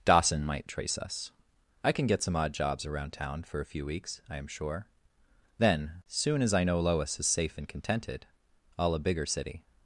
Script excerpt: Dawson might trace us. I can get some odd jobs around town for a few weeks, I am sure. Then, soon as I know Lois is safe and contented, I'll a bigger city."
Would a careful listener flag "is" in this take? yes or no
no